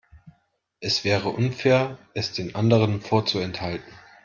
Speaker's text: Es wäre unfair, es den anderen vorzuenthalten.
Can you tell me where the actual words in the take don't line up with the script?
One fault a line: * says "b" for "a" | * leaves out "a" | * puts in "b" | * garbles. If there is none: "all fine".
all fine